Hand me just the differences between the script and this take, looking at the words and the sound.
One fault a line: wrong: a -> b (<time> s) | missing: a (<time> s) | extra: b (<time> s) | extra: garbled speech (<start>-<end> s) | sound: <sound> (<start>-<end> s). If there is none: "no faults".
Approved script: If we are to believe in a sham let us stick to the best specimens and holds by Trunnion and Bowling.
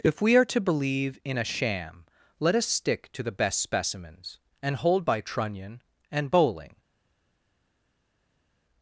wrong: holds -> hold (4.8 s)